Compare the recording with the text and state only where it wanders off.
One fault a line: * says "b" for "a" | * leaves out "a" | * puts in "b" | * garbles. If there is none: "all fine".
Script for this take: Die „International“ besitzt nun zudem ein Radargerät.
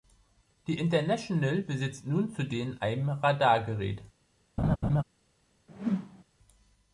all fine